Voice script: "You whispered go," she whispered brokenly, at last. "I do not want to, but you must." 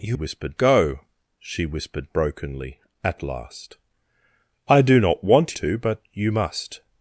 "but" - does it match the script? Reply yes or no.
yes